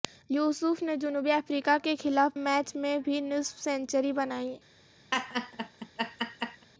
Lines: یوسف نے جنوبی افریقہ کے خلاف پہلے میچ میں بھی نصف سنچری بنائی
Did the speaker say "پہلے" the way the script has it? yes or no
no